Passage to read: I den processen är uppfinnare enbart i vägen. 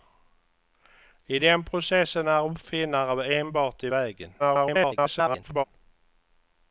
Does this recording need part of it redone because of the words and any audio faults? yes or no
yes